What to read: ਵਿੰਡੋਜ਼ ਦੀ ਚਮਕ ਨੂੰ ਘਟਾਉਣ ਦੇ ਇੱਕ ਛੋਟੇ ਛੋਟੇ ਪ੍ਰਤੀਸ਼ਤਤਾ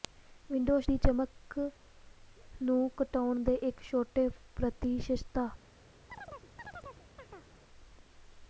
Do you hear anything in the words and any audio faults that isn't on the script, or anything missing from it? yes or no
yes